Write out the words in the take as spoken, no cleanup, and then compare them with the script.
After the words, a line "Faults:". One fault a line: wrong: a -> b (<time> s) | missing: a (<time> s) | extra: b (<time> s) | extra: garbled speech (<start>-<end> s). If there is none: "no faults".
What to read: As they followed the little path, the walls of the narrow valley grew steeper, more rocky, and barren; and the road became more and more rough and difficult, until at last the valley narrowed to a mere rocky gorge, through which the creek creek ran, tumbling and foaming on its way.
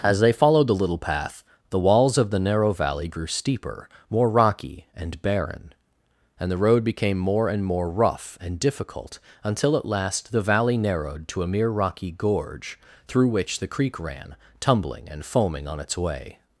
As they followed the little path, the walls of the narrow valley grew steeper, more rocky, and barren; and the road became more and more rough and difficult, until at last the valley narrowed to a mere rocky gorge, through which the creek ran, tumbling and foaming on its way.
Faults:
missing: creek (14.0 s)